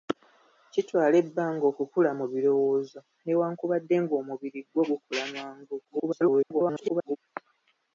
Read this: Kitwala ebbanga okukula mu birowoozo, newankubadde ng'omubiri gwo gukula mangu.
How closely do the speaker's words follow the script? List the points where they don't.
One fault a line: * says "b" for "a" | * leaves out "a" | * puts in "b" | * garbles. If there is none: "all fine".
* garbles